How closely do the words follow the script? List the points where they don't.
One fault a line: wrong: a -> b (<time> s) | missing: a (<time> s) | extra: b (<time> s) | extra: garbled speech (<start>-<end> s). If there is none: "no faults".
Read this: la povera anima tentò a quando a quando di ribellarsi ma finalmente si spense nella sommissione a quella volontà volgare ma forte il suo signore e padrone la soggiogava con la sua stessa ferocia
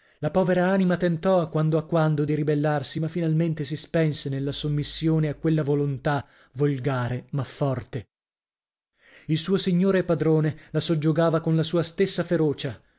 no faults